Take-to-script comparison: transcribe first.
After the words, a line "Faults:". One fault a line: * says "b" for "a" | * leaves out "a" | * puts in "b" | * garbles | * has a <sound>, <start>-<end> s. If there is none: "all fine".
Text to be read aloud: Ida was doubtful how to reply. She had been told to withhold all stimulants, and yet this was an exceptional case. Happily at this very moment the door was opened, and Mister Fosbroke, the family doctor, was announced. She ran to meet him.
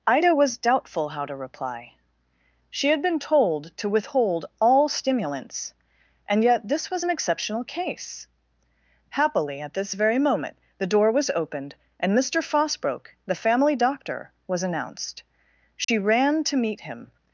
Ida was doubtful how to reply. She had been told to withhold all stimulants, and yet this was an exceptional case. Happily at this very moment the door was opened, and Mister Fosbroke, the family doctor, was announced. She ran to meet him.
Faults:
* has a dropout, 15.8-15.9 s